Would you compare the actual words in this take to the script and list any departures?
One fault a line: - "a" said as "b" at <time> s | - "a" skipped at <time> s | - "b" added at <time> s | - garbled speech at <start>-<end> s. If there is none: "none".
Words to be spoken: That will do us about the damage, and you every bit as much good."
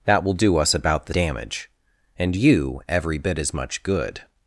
none